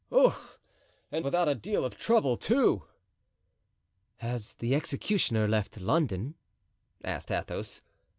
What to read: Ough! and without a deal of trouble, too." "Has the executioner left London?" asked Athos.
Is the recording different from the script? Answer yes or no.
no